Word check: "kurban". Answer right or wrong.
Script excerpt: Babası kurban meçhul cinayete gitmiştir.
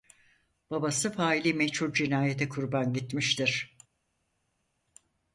wrong